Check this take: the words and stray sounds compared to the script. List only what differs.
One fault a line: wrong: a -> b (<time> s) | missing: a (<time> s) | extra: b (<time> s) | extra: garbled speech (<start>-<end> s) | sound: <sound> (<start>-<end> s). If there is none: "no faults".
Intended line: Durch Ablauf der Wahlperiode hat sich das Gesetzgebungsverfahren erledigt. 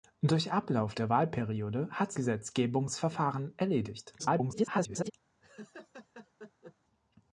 missing: sich das (2.1 s)
extra: garbled speech (4.2-5.1 s)
sound: laugh (5.4-6.8 s)